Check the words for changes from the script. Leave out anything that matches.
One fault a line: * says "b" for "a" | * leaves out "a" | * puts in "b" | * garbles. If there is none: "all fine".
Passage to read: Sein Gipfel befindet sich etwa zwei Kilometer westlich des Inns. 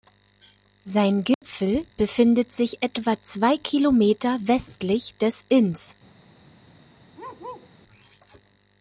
all fine